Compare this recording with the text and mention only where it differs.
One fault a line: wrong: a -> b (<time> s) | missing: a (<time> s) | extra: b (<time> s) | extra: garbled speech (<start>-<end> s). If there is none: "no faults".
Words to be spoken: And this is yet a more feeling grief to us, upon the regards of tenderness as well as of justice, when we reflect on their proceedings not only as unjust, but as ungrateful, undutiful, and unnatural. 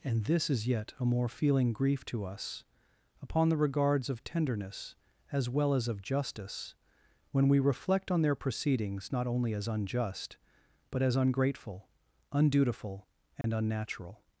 no faults